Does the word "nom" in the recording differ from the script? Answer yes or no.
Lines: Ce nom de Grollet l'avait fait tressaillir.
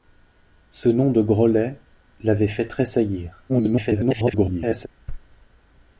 no